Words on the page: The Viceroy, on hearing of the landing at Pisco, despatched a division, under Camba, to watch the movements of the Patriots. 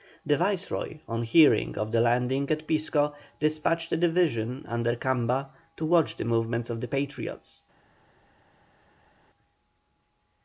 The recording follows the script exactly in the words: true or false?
true